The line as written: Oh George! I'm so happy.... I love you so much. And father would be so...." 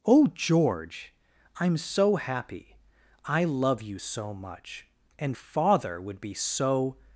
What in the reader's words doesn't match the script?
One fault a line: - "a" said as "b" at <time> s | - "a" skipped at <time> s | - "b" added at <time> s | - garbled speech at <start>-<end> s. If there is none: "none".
none